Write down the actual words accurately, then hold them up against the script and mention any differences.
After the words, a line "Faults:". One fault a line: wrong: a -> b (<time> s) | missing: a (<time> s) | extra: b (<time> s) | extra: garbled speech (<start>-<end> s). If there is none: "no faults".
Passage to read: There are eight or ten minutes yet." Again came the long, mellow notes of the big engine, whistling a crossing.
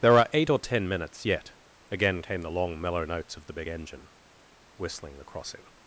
There are eight or ten minutes yet." Again came the long, mellow notes of the big engine, whistling the crossing.
Faults:
wrong: a -> the (5.2 s)